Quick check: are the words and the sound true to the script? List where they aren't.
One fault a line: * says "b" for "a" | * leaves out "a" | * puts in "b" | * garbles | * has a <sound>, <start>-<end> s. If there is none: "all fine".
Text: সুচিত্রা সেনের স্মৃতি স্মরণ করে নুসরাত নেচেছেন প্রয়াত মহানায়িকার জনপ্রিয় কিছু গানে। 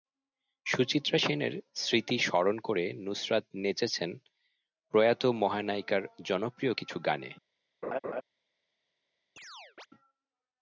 * has a laugh, 7.8-8.2 s
* has a chirp, 9.4-9.9 s